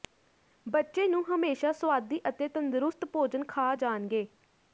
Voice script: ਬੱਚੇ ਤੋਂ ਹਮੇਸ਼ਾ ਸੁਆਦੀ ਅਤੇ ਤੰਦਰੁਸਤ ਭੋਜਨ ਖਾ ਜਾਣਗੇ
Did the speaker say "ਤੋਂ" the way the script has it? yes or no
no